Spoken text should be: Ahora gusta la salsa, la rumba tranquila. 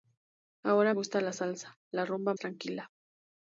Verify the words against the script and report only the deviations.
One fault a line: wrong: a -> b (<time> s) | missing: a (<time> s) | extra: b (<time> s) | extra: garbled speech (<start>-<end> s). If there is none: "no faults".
no faults